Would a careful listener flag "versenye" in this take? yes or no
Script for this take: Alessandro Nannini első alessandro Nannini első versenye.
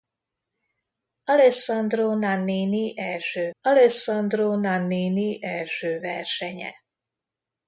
no